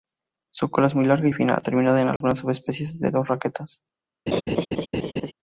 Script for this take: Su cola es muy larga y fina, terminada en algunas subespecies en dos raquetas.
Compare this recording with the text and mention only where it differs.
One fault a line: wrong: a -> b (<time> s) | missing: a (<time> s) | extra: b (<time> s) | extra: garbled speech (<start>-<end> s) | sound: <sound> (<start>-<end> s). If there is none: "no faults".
sound: dropout (2.2-2.2 s)
sound: laugh (4.3-5.3 s)